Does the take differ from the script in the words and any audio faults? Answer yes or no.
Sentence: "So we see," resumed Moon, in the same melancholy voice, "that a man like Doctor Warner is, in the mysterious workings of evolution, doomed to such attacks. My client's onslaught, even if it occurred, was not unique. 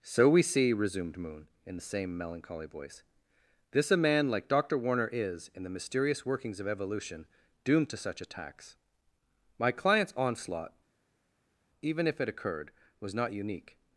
yes